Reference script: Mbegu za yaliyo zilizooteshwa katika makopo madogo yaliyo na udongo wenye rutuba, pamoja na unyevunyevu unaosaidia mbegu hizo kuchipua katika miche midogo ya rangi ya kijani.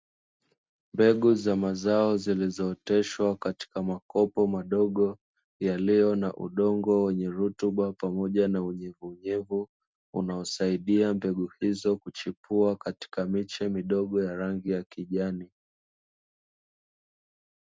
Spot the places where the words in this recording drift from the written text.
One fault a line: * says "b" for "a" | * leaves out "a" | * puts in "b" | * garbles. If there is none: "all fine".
* says "mazao" for "yaliyo"